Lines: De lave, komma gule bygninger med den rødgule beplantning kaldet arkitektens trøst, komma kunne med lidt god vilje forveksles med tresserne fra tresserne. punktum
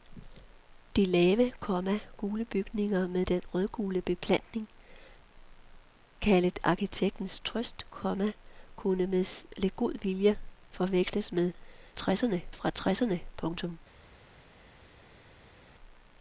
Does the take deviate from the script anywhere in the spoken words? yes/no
no